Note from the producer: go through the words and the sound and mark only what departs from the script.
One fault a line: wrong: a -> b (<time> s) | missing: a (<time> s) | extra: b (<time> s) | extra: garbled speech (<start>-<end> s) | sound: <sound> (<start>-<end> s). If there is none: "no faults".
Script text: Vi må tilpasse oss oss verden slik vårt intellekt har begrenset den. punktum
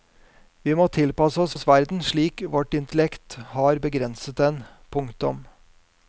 no faults